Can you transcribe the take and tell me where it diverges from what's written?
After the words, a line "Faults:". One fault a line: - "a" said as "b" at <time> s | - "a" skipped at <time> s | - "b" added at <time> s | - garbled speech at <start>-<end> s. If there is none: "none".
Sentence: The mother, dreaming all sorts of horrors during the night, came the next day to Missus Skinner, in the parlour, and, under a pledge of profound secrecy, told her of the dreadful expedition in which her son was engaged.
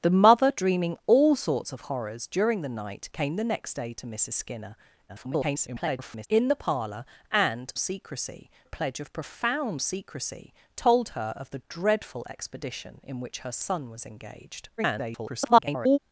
The mother, dreaming all sorts of horrors during the night, came the next day to Missus Skinner, [garbled] in the parlour, and, secrecy a pledge of profound secrecy, told her of the dreadful expedition in which her son was engaged. [garbled]
Faults:
- garbled speech at 5.1-6.3 s
- "under" said as "secrecy" at 7.8 s
- garbled speech at 14.8-16.0 s